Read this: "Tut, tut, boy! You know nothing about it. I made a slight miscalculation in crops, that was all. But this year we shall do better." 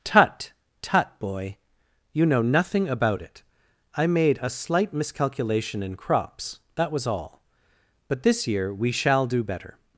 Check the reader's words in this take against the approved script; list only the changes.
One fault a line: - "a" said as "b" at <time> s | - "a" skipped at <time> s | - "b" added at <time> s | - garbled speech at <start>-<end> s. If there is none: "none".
none